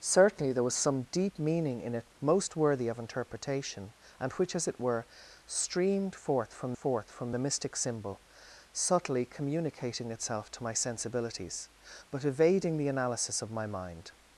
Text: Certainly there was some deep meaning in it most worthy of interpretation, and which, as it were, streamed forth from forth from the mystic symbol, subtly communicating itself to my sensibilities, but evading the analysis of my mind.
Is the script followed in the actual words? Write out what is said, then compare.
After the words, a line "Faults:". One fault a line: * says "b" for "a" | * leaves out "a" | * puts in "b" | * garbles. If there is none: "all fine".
Certainly there was some deep meaning in it most worthy of interpretation, and which, as it were, streamed forth from forth from the mystic symbol, subtly communicating itself to my sensibilities, but evading the analysis of my mind.
Faults:
all fine